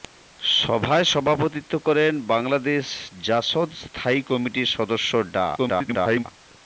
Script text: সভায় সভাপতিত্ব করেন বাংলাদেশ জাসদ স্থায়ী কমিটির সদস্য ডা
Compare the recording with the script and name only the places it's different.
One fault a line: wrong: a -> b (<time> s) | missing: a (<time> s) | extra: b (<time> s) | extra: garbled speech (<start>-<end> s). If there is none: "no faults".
extra: garbled speech (5.6-6.2 s)